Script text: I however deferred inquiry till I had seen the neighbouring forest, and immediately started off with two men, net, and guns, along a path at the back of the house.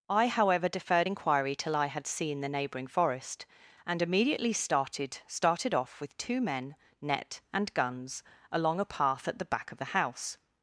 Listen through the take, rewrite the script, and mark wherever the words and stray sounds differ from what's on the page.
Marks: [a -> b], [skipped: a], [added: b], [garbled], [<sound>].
I however deferred inquiry till I had seen the neighbouring forest, and immediately started [added: started] off with two men, net, and guns, along a path at the back of the house.